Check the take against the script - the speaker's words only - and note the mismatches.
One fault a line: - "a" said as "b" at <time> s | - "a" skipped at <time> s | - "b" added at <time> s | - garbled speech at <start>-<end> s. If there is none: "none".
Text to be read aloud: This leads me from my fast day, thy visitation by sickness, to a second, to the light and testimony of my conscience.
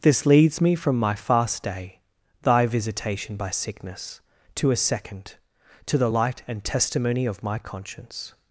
none